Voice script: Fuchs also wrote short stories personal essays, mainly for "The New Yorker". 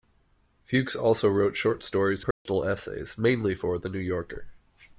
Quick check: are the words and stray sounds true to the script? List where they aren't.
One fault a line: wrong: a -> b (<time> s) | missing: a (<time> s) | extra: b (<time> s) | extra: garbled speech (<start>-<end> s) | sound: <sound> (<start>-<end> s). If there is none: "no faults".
sound: dropout (2.3-2.5 s)